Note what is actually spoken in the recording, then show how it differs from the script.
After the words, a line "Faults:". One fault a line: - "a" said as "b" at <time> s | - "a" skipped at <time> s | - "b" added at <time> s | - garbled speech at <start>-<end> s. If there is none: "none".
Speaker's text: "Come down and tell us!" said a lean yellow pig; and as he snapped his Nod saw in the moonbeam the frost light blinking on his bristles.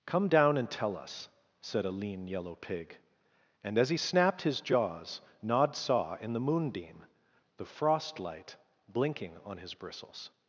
"Come down and tell us!" said a lean yellow pig; and as he snapped his jaws Nod saw in the moonbeam the frost light blinking on his bristles.
Faults:
- "jaws" added at 4.6 s